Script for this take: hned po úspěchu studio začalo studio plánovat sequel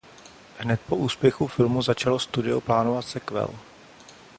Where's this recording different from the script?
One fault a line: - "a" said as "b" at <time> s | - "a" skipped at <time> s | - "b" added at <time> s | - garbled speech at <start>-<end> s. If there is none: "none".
- "studio" said as "filmu" at 1.5 s